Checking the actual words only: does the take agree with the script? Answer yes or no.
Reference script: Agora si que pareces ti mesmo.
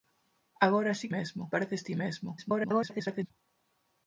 no